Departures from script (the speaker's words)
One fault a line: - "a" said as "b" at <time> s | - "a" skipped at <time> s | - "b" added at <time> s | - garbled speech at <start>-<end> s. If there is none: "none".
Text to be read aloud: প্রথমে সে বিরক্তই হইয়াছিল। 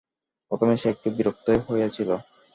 - "একটু" added at 0.9 s